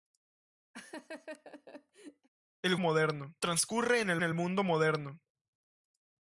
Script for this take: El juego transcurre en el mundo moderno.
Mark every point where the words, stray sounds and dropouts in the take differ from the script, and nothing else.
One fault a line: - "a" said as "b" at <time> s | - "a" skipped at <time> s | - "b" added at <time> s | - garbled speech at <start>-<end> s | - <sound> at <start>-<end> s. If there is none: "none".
- laugh at 0.7-2.3 s
- "juego" said as "moderno" at 2.8 s
- "el" added at 4.2 s